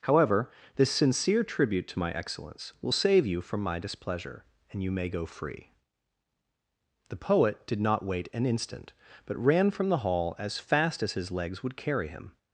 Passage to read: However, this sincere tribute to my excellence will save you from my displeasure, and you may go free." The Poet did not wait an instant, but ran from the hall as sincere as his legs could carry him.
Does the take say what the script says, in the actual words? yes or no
no